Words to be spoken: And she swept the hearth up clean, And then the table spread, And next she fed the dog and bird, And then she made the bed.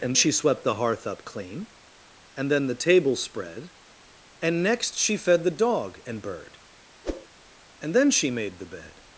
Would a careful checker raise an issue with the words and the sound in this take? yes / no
yes